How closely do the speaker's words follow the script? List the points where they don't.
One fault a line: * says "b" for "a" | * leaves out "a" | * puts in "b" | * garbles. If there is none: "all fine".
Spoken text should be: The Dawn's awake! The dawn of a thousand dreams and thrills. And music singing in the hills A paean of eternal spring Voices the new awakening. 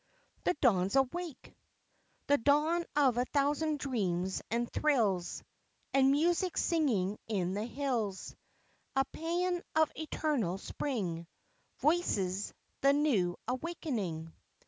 all fine